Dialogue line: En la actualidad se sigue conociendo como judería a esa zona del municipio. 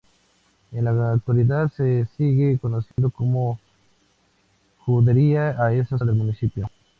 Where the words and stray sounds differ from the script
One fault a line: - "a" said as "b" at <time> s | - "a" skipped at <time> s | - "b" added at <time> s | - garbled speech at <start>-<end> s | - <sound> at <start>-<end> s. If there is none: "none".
- dropout at 2.9-3.0 s
- "zona" skipped at 6.0 s